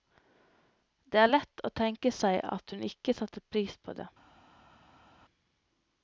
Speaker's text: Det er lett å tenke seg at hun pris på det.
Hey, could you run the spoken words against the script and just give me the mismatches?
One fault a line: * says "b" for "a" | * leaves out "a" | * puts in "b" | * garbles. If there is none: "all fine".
* puts in "ikke satte"